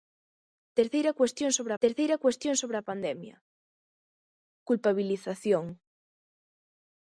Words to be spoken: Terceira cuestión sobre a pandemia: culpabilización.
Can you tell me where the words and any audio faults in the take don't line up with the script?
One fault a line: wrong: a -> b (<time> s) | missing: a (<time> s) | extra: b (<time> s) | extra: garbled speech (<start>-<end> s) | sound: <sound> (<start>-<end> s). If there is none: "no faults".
extra: terceira cuestión sobre (1.8 s)